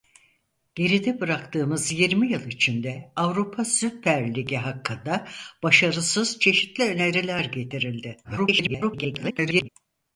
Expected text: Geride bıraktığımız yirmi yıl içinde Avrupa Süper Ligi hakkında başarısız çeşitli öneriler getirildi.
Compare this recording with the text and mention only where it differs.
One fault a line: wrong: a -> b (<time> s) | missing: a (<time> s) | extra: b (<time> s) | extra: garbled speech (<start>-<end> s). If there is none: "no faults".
extra: garbled speech (8.2-9.7 s)